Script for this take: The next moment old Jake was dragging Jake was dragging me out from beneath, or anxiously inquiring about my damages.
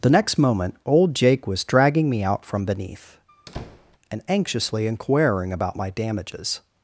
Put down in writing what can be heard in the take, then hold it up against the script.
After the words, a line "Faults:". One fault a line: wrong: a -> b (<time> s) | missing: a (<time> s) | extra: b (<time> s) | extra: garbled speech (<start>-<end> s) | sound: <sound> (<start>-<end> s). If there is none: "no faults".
The next moment old Jake was dragging me out from beneath, and anxiously inquiring about my damages.
Faults:
missing: Jake was dragging (2.1 s)
sound: squeak (3.3-4.0 s)
wrong: or -> and (4.1 s)